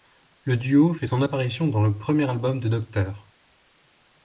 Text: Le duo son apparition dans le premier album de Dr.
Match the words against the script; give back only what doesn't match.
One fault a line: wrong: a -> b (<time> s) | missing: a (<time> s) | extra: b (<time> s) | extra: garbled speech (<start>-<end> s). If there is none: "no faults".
extra: fait (0.9 s)